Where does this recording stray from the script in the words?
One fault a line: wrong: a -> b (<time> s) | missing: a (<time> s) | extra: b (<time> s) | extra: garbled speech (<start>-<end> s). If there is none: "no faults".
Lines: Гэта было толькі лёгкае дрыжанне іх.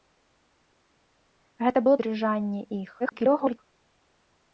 missing: толькі лёгкае (1.9 s)
extra: garbled speech (3.0-3.6 s)